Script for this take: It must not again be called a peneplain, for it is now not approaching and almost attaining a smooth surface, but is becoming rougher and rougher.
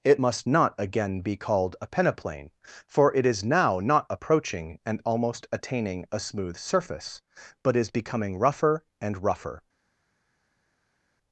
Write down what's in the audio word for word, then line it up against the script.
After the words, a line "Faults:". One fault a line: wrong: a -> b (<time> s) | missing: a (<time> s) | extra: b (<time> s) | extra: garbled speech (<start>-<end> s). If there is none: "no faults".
It must not again be called a peneplain, for it is now not approaching and almost attaining a smooth surface, but is becoming rougher and rougher.
Faults:
no faults